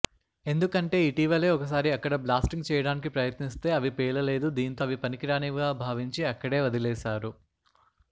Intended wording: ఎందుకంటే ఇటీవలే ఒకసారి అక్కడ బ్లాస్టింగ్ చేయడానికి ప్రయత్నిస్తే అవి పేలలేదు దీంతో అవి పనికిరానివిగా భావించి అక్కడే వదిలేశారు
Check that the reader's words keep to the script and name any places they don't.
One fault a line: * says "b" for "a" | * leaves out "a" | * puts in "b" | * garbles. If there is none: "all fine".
all fine